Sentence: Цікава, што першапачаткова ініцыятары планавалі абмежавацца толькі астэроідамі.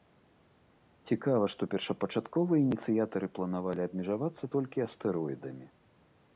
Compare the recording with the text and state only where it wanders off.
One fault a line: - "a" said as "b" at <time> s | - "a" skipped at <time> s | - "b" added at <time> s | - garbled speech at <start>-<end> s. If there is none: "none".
none